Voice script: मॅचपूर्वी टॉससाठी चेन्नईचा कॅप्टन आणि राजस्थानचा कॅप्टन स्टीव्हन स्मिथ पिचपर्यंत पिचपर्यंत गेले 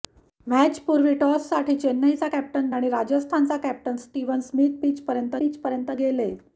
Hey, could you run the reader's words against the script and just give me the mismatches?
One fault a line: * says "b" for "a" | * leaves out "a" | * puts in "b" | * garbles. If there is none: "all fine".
all fine